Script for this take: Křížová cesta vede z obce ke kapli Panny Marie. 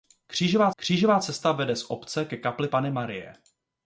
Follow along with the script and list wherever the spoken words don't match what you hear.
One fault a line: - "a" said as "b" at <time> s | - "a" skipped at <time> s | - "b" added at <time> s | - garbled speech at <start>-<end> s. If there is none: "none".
- "křížová" added at 0.8 s